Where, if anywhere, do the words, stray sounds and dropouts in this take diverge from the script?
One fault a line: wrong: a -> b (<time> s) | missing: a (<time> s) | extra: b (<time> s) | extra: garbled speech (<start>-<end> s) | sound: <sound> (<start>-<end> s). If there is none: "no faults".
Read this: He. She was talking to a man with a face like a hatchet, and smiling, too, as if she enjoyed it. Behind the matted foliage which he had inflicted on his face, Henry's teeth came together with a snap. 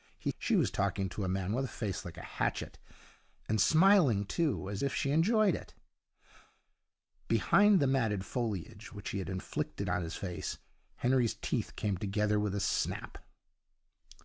no faults